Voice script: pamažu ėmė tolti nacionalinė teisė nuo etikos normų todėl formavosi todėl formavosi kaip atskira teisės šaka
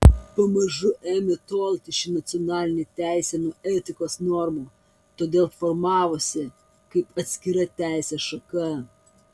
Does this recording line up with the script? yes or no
no